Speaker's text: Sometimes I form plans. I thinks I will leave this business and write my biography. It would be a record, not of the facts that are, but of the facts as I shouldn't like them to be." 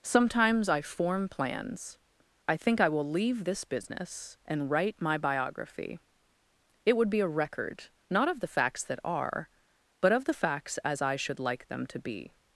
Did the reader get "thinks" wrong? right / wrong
wrong